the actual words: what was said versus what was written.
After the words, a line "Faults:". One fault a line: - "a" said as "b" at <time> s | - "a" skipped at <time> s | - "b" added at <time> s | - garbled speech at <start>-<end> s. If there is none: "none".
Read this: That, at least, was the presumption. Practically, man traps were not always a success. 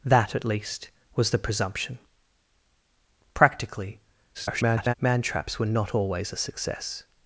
That, at least, was the presumption. Practically, [garbled] man traps were not always a success.
Faults:
- garbled speech at 4.3-4.9 s